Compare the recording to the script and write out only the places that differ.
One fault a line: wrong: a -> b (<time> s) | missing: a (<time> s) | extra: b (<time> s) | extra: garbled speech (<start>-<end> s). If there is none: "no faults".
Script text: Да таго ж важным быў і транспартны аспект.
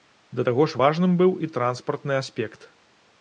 no faults